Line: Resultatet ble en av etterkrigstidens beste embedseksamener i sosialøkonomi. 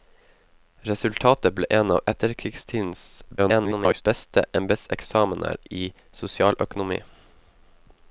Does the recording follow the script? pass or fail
fail